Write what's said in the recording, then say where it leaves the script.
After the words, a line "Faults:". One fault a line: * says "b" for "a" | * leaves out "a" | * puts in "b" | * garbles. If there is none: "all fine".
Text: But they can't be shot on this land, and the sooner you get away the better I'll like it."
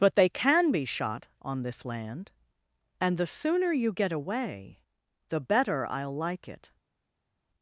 But they can be shot on this land, and the sooner you get away the better I'll like it."
Faults:
* says "can" for "can't"